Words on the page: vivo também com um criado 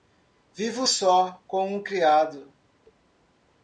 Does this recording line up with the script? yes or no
no